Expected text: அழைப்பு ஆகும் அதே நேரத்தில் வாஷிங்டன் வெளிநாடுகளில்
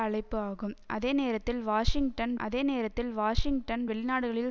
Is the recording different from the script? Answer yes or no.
yes